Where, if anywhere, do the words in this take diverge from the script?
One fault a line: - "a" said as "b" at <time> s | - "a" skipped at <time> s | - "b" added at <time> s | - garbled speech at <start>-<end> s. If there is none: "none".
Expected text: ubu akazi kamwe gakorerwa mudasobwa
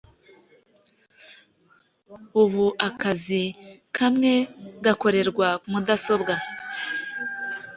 none